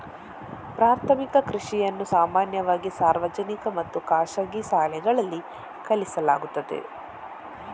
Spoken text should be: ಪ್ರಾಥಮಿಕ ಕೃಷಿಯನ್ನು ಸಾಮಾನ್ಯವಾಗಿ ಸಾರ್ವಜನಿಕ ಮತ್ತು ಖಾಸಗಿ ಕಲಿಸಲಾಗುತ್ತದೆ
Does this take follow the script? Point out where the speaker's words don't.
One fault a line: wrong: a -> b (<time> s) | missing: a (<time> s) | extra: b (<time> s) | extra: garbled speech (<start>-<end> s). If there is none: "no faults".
extra: ಶಾಲೆಗಳಲ್ಲಿ (4.7 s)